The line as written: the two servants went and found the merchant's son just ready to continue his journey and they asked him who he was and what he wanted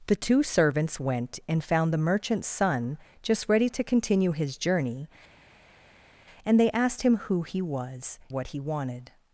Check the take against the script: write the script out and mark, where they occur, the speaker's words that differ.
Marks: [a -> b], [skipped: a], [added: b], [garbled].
the two servants went and found the merchant's son just ready to continue his journey and they asked him who he was [skipped: and] what he wanted